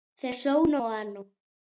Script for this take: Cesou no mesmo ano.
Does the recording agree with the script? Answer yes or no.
no